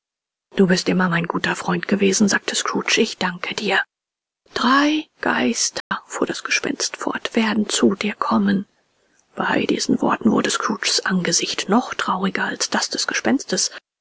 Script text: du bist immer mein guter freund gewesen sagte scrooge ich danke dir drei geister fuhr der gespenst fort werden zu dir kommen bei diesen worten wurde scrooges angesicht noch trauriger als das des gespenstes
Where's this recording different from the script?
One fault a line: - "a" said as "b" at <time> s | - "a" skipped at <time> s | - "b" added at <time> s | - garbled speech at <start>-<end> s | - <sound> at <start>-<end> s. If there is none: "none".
- dropout at 5.8-5.9 s
- "der" said as "das" at 6.3 s